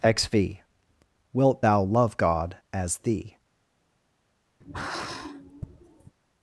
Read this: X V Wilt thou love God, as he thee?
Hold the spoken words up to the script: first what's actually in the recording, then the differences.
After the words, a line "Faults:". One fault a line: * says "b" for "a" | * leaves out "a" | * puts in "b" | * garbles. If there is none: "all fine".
X V Wilt thou love God, as thee?
Faults:
* leaves out "he"